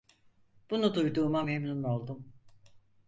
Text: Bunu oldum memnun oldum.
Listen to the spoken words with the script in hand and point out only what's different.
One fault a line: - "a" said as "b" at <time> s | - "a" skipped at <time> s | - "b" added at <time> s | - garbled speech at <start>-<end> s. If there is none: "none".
- "oldum" said as "duyduğuma" at 0.9 s